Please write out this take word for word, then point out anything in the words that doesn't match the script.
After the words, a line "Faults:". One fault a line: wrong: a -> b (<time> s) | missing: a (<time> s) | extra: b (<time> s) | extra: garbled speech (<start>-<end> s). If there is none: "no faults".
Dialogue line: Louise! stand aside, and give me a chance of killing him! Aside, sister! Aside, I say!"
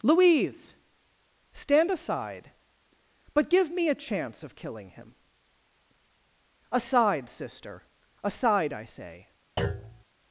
Louise! stand aside, but give me a chance of killing him! Aside, sister! Aside, I say!"
Faults:
wrong: and -> but (3.3 s)